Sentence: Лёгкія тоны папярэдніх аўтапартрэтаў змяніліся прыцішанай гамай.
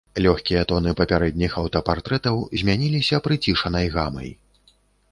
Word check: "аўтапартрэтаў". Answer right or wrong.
right